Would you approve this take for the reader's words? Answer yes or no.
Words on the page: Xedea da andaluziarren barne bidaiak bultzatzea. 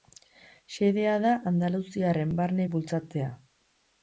no